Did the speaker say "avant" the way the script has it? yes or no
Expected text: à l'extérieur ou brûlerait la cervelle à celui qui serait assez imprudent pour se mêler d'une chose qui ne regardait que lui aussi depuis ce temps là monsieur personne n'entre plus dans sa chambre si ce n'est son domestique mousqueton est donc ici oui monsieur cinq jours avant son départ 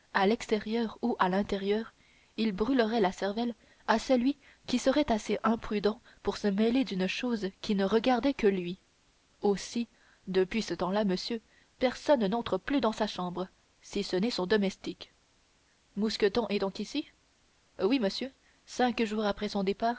no